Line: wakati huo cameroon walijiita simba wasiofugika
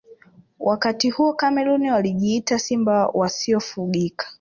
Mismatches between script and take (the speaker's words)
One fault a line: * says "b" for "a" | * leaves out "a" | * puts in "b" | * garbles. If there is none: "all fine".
all fine